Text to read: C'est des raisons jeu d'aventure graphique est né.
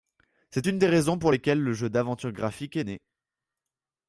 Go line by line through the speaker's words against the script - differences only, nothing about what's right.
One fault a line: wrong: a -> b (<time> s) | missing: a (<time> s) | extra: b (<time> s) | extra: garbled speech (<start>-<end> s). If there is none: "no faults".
extra: une (0.6 s)
extra: pour lesquelles le (1.2 s)